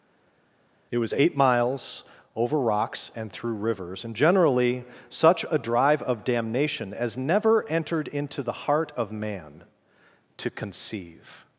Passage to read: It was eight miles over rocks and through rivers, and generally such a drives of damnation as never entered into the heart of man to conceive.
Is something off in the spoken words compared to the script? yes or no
yes